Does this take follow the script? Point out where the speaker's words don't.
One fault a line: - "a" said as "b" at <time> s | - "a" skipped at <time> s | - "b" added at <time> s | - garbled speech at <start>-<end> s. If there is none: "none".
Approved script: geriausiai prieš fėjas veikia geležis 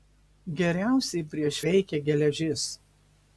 - "fėjas" skipped at 1.6 s